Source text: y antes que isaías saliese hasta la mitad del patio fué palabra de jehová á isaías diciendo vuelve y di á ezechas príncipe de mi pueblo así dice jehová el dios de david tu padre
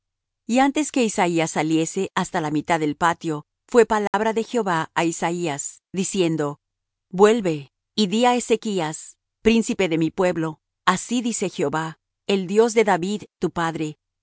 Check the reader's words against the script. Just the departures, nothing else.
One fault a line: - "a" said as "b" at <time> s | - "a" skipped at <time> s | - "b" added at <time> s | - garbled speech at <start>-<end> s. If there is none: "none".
none